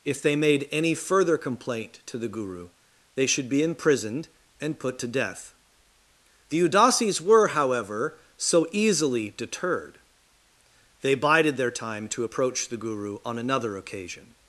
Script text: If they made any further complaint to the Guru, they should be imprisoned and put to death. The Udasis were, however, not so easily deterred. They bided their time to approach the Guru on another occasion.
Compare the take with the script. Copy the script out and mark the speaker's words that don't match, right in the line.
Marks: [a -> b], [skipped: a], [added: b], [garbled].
If they made any further complaint to the Guru, they should be imprisoned and put to death. The Udasis were, however, [skipped: not] so easily deterred. They bided their time to approach the Guru on another occasion.